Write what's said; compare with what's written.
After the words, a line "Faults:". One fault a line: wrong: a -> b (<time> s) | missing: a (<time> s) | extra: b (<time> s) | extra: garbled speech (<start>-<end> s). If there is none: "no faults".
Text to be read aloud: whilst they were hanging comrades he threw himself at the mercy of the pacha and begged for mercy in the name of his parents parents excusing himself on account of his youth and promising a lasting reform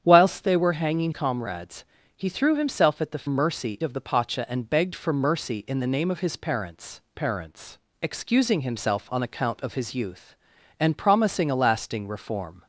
whilst they were hanging comrades he threw himself at the mercy of the pacha and begged for mercy in the name of his parents parents excusing himself on account of his youth and promising a lasting reform
Faults:
no faults